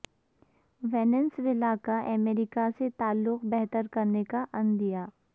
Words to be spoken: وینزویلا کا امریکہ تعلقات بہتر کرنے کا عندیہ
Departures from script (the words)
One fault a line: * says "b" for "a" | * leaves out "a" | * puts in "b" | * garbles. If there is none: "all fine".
* puts in "سے"